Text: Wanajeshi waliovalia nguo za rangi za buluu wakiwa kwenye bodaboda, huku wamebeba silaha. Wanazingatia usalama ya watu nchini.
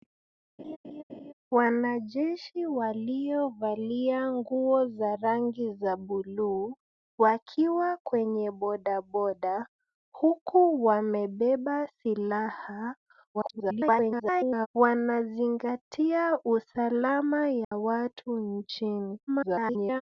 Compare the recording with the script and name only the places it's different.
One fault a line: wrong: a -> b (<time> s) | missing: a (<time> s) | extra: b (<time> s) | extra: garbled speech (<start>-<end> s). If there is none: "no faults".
extra: garbled speech (13.3-14.7 s)
extra: garbled speech (19.3-20.0 s)